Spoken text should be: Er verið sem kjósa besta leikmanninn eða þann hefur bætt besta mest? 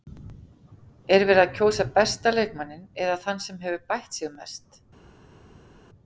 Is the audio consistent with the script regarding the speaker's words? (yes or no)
no